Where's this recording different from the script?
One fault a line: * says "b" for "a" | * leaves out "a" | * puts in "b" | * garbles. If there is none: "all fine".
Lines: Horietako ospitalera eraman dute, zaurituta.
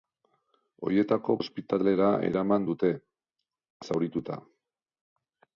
all fine